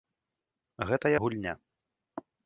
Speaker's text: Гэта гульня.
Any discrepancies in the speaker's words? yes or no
no